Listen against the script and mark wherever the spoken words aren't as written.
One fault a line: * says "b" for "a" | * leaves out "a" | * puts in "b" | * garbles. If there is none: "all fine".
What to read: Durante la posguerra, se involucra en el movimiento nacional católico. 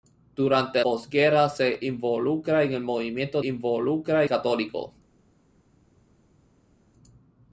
* leaves out "la"
* says "involucra" for "nacional"